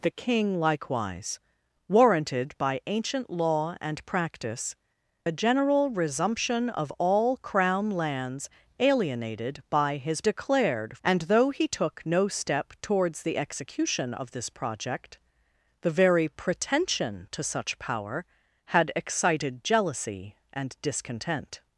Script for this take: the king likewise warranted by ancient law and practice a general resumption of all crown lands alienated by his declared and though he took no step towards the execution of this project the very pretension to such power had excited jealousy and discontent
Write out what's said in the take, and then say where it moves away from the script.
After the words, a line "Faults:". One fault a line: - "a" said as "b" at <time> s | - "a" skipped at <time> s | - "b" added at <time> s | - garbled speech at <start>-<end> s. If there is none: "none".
the king likewise warranted by ancient law and practice a general resumption of all crown lands alienated by his declared and though he took no step towards the execution of this project the very pretension to such power had excited jealousy and discontent
Faults:
none